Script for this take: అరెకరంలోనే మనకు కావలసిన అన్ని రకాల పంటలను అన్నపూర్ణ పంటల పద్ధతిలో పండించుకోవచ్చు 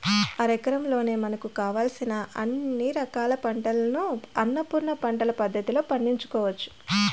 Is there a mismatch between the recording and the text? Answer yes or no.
no